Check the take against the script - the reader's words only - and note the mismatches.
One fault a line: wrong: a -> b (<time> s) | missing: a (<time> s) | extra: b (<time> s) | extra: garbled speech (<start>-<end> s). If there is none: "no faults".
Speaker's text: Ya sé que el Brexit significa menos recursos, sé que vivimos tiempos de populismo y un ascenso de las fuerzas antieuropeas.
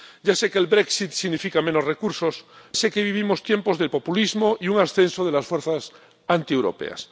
no faults